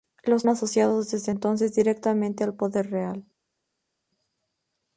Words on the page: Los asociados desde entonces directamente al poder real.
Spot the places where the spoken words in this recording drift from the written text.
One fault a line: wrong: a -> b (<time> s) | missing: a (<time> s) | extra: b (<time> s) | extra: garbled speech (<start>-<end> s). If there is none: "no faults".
no faults